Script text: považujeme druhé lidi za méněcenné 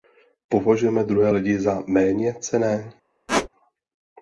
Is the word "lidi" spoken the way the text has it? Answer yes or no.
yes